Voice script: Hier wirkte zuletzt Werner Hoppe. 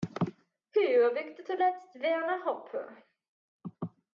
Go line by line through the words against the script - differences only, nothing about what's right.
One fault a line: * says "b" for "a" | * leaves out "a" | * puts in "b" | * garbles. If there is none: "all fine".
all fine